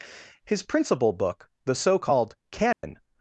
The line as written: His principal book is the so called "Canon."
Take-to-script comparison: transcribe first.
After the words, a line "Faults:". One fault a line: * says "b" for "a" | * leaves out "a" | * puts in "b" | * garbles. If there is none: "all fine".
His principal book the so called "Canon."
Faults:
* leaves out "is"